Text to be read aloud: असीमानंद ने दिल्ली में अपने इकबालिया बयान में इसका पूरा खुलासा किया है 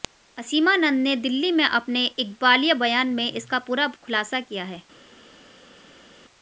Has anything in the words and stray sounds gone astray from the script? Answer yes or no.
no